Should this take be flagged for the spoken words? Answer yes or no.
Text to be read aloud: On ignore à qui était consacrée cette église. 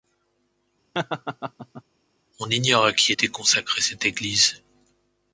no